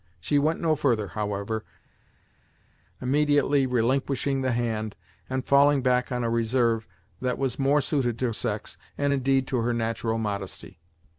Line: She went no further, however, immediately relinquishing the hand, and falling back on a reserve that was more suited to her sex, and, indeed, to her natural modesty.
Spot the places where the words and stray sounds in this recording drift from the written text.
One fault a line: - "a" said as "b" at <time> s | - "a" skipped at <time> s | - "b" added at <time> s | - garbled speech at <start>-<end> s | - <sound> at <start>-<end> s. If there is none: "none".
- "her" skipped at 8.3 s